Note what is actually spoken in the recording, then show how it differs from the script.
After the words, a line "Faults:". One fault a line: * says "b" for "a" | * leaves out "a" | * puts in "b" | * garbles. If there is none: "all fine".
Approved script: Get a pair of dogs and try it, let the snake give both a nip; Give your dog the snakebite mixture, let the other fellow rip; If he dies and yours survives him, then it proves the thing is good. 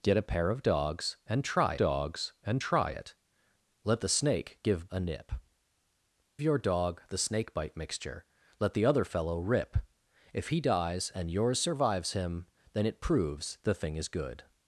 Get a pair of dogs and try dogs and try it, let the snake give a nip; Your dog the snakebite mixture, let the other fellow rip; If he dies and yours survives him, then it proves the thing is good.
Faults:
* puts in "dogs and try"
* leaves out "both"
* leaves out "Give"